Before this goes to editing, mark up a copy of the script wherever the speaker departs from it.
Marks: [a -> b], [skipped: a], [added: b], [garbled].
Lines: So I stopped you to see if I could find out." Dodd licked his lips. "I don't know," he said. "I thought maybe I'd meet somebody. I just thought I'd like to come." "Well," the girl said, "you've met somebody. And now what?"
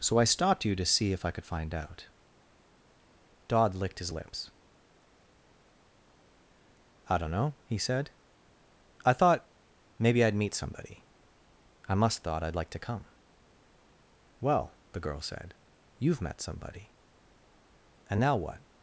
So I stopped you to see if I could find out." Dodd licked his lips. "I don't know," he said. "I thought maybe I'd meet somebody. I [just -> must] thought I'd like to come." "Well," the girl said, "you've met somebody. And now what?"